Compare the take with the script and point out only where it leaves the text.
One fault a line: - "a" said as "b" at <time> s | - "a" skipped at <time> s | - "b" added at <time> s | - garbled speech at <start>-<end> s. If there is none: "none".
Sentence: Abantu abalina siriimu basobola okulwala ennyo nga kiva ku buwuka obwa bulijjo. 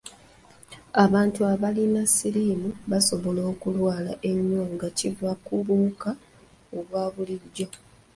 none